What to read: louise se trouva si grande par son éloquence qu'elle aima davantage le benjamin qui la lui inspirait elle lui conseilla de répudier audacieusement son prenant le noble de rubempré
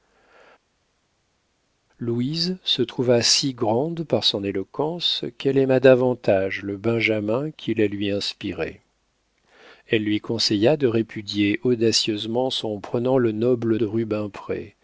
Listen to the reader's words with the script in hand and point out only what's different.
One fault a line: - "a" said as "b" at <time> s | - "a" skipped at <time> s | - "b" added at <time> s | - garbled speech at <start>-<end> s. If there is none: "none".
none